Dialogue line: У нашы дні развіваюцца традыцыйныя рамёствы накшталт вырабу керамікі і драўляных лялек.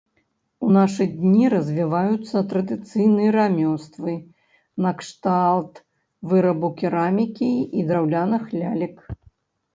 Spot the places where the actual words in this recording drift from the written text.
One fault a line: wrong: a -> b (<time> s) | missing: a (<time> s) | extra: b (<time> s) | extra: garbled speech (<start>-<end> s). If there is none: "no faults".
no faults